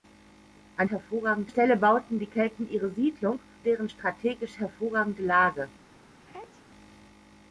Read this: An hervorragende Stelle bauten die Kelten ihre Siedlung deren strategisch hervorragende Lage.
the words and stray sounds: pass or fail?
fail